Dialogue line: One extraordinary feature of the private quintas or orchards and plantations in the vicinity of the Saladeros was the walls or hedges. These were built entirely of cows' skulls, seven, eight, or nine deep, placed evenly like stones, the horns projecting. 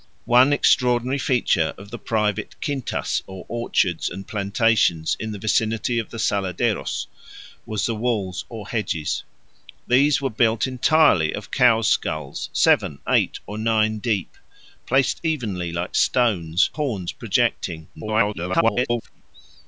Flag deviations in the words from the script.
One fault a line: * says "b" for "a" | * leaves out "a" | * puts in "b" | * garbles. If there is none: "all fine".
* leaves out "the"
* garbles